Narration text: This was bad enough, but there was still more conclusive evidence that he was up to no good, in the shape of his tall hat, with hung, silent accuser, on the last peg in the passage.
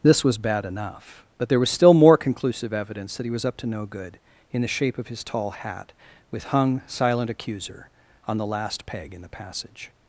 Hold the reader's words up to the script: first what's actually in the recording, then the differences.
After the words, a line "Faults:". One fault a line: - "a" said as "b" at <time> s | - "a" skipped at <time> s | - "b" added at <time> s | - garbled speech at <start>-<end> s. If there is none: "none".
This was bad enough, but there was still more conclusive evidence that he was up to no good, in the shape of his tall hat, with hung, silent accuser, on the last peg in the passage.
Faults:
none